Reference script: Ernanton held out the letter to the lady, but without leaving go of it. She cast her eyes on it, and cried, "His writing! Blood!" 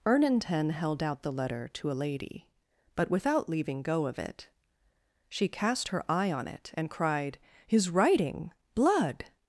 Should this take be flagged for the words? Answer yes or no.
yes